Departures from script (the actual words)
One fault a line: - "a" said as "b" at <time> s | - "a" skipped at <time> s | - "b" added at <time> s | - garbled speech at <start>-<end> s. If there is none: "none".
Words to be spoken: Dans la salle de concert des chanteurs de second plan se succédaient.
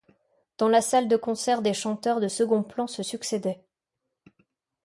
none